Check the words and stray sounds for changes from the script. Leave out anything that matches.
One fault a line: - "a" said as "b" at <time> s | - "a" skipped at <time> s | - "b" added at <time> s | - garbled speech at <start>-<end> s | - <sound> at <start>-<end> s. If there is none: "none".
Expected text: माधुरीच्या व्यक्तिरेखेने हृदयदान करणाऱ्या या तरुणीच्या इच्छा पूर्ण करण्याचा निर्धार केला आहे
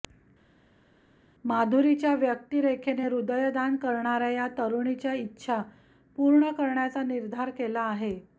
none